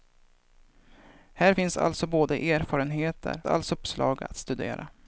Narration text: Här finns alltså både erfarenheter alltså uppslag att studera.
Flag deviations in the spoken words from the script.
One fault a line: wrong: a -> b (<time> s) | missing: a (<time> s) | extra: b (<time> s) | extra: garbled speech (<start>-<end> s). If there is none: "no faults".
no faults